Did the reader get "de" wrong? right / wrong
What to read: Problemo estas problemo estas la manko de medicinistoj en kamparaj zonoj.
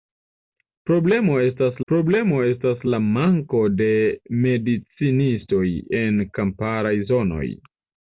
right